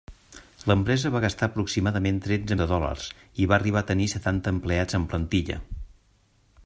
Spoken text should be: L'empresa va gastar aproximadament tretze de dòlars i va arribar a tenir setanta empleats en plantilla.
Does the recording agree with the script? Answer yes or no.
yes